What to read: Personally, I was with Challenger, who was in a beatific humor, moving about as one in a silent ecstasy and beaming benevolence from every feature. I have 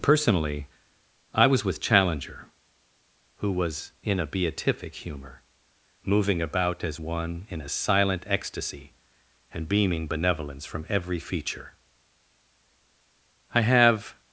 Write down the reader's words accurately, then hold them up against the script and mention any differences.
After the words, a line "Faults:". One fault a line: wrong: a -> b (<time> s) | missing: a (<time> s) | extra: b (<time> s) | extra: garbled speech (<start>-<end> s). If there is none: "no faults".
Personally, I was with Challenger, who was in a beatific humor, moving about as one in a silent ecstasy and beaming benevolence from every feature. I have
Faults:
no faults